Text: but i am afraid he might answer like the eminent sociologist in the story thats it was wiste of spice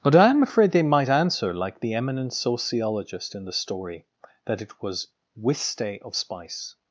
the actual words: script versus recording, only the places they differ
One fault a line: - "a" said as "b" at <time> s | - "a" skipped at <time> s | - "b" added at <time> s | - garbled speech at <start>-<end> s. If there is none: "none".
- "he" said as "they" at 0.7 s
- "thats" said as "that" at 4.5 s